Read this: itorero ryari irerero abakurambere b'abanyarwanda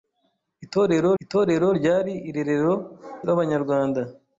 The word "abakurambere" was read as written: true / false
false